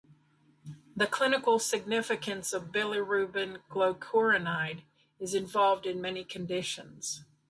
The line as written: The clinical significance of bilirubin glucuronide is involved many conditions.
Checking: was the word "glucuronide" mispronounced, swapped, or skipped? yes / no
no